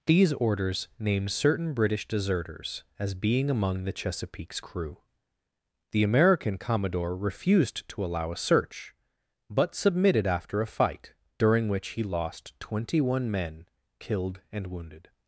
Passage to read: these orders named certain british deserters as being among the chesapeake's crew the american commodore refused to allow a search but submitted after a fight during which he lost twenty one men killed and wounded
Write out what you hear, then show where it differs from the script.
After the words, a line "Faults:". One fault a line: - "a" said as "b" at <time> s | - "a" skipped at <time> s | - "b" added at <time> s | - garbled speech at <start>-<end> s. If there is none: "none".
these orders named certain british deserters as being among the chesapeake's crew the american commodore refused to allow a search but submitted after a fight during which he lost twenty one men killed and wounded
Faults:
none